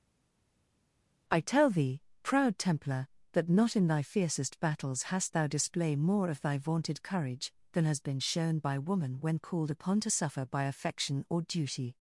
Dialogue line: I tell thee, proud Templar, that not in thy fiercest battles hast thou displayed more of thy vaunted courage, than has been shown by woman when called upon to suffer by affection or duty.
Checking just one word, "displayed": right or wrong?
wrong